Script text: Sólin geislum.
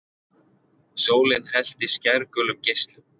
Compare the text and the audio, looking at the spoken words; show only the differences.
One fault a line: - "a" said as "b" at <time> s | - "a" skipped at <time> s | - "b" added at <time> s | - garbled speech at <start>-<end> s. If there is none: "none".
- "hellti skærgulum" added at 1.5 s